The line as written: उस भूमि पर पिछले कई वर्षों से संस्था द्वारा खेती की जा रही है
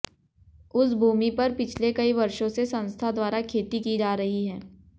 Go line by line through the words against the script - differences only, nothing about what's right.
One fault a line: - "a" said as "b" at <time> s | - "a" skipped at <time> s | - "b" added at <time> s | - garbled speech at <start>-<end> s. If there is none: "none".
none